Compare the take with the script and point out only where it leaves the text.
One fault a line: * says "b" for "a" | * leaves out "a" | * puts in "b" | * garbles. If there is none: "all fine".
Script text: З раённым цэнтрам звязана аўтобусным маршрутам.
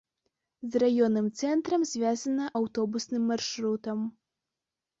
all fine